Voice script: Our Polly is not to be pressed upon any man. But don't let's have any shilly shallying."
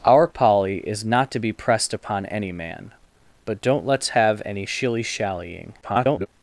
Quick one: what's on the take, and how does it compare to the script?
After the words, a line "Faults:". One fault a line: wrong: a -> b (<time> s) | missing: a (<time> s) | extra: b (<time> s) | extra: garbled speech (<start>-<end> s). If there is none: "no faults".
Our Polly is not to be pressed upon any man. But don't let's have any shilly shallying." [garbled]
Faults:
extra: garbled speech (5.8-6.3 s)